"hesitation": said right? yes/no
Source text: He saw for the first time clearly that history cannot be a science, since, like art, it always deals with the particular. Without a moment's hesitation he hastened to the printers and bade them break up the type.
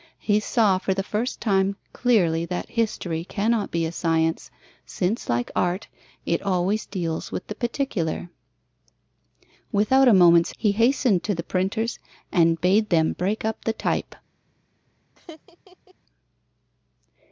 no